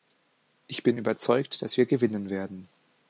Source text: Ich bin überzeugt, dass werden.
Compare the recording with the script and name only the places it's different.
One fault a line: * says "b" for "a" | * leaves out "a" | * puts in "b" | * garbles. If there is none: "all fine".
* puts in "wir gewinnen"